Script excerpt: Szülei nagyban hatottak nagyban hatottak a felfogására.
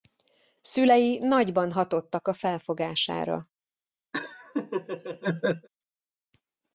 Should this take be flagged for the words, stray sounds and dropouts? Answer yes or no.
yes